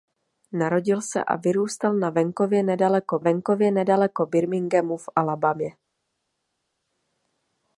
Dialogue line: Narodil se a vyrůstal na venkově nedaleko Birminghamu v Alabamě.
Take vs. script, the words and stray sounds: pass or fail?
fail